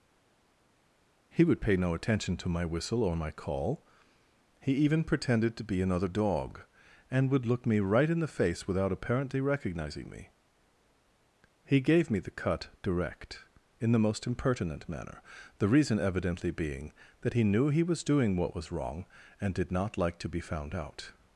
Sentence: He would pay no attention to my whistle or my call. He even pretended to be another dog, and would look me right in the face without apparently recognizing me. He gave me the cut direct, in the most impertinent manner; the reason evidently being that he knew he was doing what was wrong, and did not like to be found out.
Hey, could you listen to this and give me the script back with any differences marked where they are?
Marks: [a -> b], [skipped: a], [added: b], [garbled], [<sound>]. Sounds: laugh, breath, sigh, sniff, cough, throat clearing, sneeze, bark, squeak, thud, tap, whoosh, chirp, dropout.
He would pay no attention to my whistle or my call. He even pretended to be another dog, and would look me right in the face without apparently recognizing me. He gave me the cut direct, in the most impertinent manner; the reason evidently being that he knew he was doing what was wrong, and did not like to be found out.